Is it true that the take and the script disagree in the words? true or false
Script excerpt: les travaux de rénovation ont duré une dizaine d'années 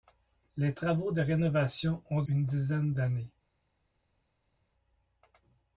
true